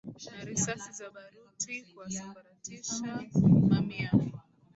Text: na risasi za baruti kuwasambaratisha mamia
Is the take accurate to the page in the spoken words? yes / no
yes